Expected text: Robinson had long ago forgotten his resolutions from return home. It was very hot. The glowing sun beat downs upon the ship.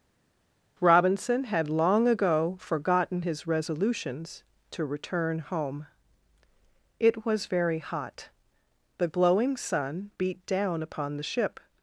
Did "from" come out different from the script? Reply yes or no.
yes